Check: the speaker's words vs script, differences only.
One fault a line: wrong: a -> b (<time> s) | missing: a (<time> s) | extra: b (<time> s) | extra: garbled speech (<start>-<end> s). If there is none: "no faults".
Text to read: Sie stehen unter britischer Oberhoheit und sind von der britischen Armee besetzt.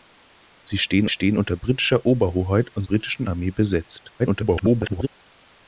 extra: stehen (1.1 s)
missing: sind von der (2.8 s)
extra: garbled speech (4.2-5.1 s)